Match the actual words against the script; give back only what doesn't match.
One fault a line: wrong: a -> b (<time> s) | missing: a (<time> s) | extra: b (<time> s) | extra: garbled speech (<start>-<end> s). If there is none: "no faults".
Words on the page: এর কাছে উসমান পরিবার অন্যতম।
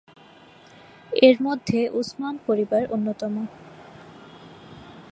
wrong: কাছে -> মধ্যে (1.4 s)